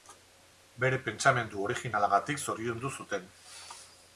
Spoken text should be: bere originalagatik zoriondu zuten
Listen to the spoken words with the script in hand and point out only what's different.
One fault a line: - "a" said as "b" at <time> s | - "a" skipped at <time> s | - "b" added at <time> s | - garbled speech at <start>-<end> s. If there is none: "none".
- "pentsamendu" added at 1.1 s